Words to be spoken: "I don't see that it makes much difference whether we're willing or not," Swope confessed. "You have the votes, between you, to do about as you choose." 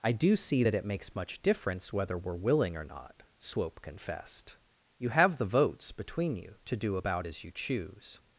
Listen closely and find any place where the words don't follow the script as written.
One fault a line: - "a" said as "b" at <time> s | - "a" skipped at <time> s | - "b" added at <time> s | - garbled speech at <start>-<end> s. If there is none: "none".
- "don't" said as "do" at 0.1 s